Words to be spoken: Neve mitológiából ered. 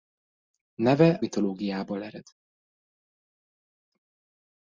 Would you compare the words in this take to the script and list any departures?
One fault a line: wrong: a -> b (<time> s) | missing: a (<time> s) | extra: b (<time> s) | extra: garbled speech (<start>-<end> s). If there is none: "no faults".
no faults